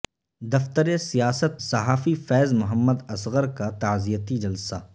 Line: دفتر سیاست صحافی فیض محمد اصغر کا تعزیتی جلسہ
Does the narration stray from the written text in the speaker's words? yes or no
no